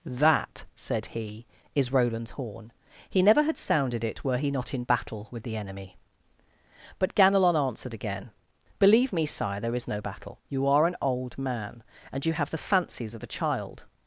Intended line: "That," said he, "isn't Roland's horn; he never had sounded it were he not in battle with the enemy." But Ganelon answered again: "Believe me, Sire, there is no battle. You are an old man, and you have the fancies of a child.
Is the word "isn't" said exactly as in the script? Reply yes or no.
no